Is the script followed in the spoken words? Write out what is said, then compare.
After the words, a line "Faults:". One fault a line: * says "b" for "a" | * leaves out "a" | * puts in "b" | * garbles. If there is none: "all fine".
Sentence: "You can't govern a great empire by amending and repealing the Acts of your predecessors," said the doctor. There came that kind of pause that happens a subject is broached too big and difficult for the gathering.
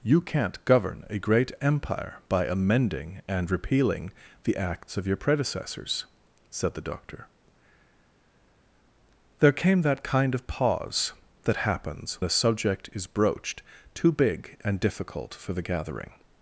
"You can't govern a great empire by amending and repealing the Acts of your predecessors," said the doctor. There came that kind of pause that happens a subject is broached too big and difficult for the gathering.
Faults:
all fine